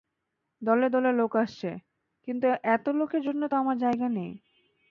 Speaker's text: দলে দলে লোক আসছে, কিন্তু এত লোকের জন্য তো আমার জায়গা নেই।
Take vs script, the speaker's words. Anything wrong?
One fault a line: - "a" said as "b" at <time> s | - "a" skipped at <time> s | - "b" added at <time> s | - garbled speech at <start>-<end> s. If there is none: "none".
none